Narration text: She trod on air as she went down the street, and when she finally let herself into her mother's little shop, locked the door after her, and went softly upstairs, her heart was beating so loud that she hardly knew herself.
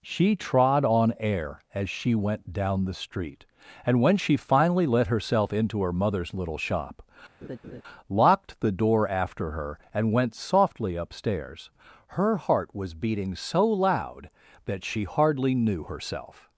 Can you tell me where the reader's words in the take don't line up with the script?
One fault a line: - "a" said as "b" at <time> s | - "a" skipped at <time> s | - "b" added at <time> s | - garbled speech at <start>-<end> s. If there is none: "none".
none